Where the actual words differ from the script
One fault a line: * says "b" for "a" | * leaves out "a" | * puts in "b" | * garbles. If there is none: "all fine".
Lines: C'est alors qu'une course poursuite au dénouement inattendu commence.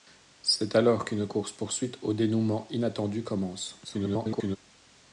* garbles